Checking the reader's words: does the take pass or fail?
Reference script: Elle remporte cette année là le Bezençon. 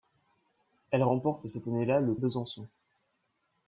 pass